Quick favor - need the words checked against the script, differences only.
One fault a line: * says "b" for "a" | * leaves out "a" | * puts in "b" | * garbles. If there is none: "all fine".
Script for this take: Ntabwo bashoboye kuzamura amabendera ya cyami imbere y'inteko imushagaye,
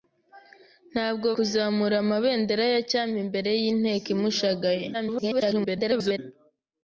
* leaves out "bashoboye"
* garbles